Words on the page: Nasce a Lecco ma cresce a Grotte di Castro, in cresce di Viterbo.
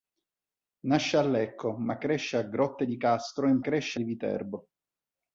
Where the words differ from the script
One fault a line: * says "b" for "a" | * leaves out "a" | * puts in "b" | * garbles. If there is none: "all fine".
all fine